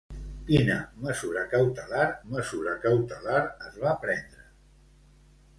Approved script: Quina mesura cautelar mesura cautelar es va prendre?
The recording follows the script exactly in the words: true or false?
true